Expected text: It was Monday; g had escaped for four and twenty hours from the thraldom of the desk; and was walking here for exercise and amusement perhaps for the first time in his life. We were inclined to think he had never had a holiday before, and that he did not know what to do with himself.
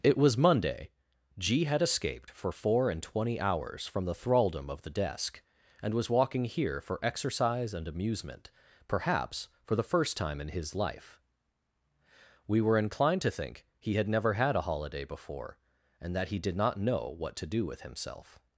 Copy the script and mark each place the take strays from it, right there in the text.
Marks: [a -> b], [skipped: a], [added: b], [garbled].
It was Monday; g had escaped for four and twenty hours from the thraldom of the desk; and was walking here for exercise and amusement perhaps for the first time in his life. We were inclined to think he had never had a holiday before, and that he did not know what to do with himself.